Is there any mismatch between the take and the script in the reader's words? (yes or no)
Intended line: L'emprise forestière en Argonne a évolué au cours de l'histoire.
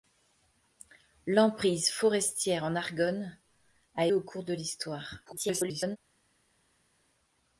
yes